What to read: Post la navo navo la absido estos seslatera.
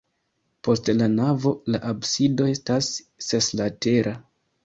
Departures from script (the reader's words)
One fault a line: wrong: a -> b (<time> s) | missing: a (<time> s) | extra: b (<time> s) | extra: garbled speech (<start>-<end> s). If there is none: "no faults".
missing: navo (1.5 s)
wrong: estos -> estas (2.5 s)